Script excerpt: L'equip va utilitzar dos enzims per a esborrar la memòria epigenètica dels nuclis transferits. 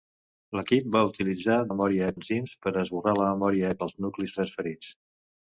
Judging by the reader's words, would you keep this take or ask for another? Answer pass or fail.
fail